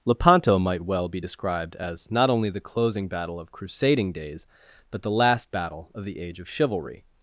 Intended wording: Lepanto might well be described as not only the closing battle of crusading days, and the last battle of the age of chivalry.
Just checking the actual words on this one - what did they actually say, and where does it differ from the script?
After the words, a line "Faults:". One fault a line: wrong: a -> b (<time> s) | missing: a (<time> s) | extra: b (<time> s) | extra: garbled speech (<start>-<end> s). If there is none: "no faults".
Lepanto might well be described as not only the closing battle of crusading days, but the last battle of the age of chivalry.
Faults:
wrong: and -> but (4.9 s)